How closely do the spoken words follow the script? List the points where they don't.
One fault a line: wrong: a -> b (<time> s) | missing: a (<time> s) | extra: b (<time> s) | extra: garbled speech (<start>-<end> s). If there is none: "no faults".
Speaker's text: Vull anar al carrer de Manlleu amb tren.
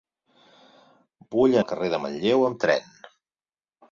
missing: anar (1.6 s)